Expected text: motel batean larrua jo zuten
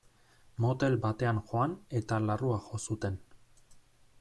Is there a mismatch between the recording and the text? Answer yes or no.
yes